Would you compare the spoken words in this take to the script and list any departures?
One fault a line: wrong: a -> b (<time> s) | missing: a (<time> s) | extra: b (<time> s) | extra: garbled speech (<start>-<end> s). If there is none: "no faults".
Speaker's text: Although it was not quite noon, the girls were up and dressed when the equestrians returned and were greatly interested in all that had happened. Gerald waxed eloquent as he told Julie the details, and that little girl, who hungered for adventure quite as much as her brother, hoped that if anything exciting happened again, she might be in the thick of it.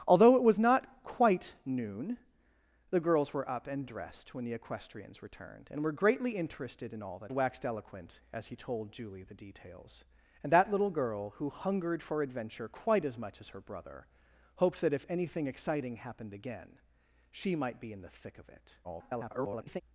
missing: had happened Gerald (7.3 s)
extra: garbled speech (18.8-19.8 s)